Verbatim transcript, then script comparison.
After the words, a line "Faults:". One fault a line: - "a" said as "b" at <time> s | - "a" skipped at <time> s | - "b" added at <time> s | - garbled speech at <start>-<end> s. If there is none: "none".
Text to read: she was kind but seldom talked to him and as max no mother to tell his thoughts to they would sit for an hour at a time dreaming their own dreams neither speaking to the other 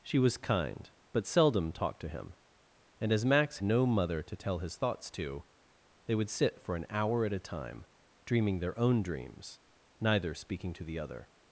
she was kind but seldom talked to him and as max no mother to tell his thoughts to they would sit for an hour at a time dreaming their own dreams neither speaking to the other
Faults:
none